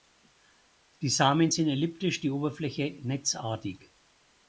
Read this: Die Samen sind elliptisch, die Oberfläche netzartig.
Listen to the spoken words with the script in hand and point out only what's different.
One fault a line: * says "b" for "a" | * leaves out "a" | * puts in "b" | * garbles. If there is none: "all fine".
all fine